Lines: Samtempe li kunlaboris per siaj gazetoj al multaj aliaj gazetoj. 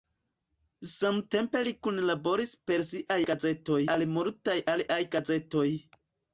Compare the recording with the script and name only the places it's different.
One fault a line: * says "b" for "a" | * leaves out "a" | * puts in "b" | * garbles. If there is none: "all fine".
all fine